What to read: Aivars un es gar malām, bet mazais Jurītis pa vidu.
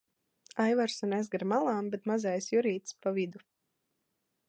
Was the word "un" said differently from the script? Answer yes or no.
no